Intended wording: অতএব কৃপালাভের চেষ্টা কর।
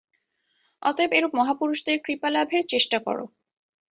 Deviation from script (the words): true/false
true